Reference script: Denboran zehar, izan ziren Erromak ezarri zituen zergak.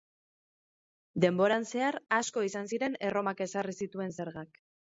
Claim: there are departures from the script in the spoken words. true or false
true